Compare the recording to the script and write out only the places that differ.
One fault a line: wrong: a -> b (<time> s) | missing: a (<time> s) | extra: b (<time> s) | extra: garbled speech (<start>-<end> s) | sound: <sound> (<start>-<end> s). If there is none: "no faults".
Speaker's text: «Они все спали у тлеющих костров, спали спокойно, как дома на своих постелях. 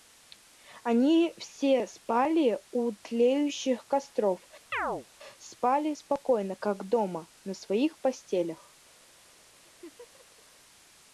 sound: chirp (4.7-5.1 s)
sound: laugh (9.6-10.4 s)